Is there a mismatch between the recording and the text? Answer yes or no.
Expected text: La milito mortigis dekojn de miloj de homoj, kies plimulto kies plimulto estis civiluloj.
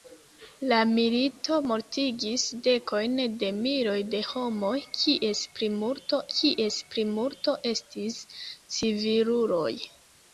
no